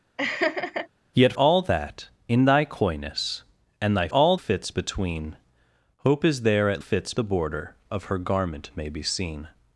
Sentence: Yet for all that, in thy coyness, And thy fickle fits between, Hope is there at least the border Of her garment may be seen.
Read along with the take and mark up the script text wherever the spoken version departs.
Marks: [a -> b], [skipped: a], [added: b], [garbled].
Yet [skipped: for] all that, in thy coyness, And thy [fickle -> all] fits between, Hope is there at [least -> fits] the border Of her garment may be seen.